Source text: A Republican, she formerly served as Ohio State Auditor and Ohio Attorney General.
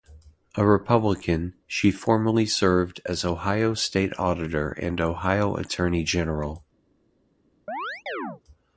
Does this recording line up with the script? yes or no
yes